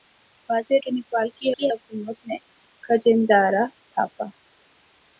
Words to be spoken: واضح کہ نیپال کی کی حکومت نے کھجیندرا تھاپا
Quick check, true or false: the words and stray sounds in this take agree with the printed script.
true